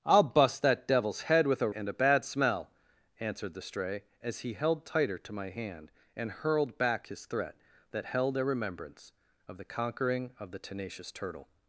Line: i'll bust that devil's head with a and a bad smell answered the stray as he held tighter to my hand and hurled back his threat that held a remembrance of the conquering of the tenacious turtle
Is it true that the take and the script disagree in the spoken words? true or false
false